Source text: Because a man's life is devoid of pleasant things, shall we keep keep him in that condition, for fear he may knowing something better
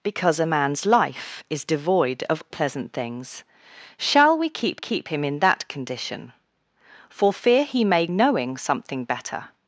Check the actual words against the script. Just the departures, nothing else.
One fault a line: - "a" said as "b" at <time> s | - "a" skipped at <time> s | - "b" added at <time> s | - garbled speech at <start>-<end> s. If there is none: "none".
none